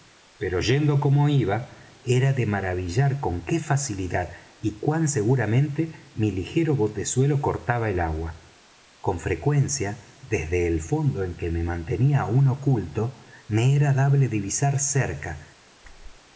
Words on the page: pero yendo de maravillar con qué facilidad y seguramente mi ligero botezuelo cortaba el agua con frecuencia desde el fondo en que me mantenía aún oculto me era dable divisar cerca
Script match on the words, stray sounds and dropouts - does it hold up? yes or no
no